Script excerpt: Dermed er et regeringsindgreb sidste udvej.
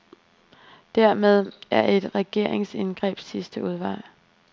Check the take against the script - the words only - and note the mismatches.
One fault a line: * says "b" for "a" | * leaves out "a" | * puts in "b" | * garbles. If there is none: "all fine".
all fine